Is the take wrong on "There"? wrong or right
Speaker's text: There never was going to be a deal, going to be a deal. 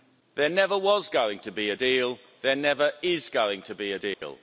right